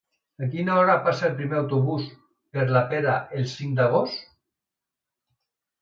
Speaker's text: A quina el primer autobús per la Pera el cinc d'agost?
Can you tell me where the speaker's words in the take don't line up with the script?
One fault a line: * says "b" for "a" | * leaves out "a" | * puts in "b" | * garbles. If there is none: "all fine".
* puts in "hora passa"